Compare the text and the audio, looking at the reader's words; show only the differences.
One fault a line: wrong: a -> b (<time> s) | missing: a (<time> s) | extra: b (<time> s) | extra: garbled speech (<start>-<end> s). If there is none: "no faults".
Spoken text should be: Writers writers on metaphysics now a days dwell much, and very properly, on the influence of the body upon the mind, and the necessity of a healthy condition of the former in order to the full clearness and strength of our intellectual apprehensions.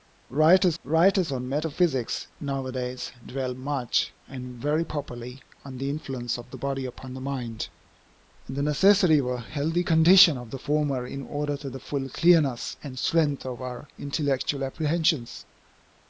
no faults